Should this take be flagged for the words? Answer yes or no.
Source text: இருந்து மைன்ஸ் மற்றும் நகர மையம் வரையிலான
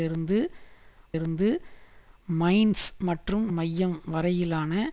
yes